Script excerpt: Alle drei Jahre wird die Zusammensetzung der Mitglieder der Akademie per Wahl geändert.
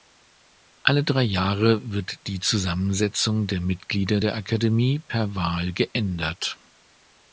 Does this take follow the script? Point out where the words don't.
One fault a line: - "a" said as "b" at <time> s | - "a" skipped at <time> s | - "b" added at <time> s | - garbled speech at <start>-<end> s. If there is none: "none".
none